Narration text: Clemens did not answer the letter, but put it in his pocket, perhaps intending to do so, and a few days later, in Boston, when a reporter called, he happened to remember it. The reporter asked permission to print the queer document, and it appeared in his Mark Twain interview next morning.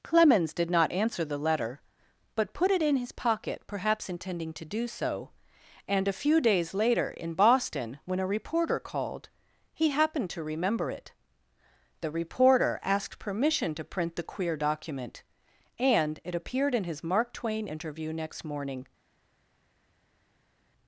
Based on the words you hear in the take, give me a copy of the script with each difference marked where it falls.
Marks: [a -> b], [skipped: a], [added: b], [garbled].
Clemens did not answer the letter, but put it in his pocket, perhaps intending to do so, and a few days later, in Boston, when a reporter called, he happened to remember it. The reporter asked permission to print the queer document, and it appeared in his Mark Twain interview next morning.